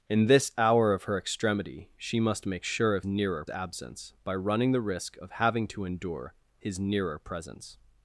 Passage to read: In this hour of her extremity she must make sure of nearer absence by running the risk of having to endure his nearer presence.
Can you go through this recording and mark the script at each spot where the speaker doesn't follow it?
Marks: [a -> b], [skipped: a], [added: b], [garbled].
In this hour of her extremity she must make sure of nearer absence by running the risk of having to endure his nearer presence.